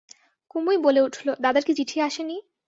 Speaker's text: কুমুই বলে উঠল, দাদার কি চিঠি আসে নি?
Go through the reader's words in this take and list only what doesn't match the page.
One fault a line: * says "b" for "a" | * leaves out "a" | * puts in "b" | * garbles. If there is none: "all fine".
all fine